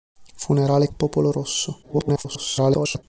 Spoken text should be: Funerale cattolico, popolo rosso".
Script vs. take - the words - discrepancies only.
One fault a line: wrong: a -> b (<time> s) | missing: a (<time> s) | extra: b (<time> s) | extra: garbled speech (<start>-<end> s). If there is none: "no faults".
missing: cattolico (0.9 s)
extra: garbled speech (1.8-3.0 s)